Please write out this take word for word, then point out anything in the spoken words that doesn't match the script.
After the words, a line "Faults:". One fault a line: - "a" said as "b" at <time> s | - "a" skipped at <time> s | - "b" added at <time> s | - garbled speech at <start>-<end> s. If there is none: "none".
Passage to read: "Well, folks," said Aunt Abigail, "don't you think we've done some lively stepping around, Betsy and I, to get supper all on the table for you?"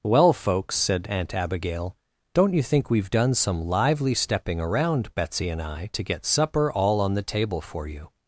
"Well, folks," said Aunt Abigail, "don't you think we've done some lively stepping around, Betsy and I, to get supper all on the table for you?"
Faults:
none